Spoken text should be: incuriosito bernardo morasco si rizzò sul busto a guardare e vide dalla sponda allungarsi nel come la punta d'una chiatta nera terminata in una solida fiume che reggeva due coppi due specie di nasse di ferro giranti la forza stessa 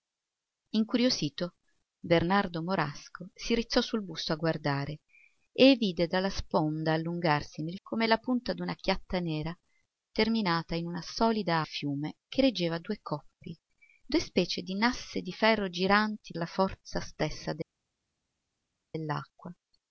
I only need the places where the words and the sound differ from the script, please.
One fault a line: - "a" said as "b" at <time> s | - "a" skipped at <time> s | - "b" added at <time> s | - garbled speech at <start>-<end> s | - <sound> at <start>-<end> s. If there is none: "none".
none